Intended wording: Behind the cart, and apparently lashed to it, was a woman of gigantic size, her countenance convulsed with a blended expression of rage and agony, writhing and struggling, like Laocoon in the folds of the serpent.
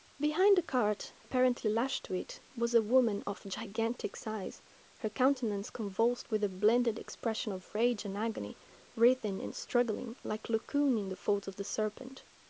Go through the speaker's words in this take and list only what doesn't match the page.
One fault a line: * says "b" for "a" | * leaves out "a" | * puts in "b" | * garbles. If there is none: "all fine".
* leaves out "and"